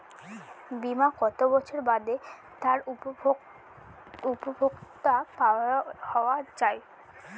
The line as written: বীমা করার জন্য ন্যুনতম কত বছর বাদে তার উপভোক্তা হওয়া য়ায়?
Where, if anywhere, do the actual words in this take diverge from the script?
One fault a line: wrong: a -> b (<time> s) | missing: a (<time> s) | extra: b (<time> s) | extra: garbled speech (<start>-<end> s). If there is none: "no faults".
missing: করার জন্য ন্যুনতম (1.1 s)